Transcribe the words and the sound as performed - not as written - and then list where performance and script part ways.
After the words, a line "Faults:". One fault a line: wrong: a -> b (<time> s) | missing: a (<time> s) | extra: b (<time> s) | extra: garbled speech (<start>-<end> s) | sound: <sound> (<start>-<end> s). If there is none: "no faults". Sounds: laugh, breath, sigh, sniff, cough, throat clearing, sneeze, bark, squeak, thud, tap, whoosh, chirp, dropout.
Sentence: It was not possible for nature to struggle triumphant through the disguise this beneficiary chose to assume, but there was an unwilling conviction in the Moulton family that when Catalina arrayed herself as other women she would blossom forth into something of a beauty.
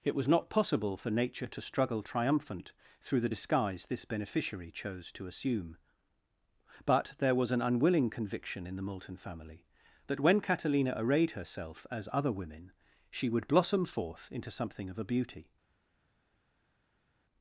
It was not possible for nature to struggle triumphant through the disguise this beneficiary chose to assume, but there was an unwilling conviction in the Moulton family that when Catalina arrayed herself as other women she would blossom forth into something of a beauty.
Faults:
no faults